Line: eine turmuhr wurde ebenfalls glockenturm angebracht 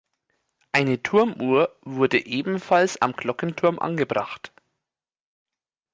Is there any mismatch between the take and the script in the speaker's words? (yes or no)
yes